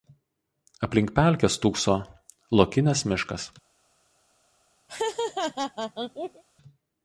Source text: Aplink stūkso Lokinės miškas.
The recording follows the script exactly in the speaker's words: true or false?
false